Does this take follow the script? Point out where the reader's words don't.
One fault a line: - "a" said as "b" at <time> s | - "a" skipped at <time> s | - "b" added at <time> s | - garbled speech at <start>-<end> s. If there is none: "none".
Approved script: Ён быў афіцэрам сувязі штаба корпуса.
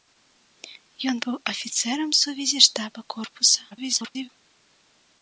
- garbled speech at 3.7-4.3 s